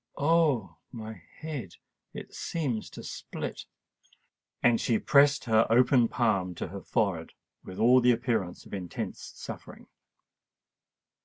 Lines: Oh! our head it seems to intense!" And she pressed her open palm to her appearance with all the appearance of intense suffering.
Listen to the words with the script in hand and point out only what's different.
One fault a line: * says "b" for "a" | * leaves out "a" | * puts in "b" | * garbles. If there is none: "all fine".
* says "my" for "our"
* says "split" for "intense"
* says "forehead" for "appearance"